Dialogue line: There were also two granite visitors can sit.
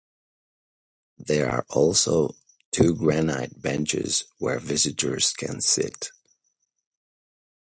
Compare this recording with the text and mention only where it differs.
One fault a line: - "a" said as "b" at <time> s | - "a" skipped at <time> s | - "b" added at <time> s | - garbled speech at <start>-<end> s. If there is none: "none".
- "were" said as "are" at 1.5 s
- "benches where" added at 3.6 s